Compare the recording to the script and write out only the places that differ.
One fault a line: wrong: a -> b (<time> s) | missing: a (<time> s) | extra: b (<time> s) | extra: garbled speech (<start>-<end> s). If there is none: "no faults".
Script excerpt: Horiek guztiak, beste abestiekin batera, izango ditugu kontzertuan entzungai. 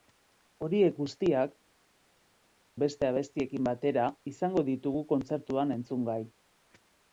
no faults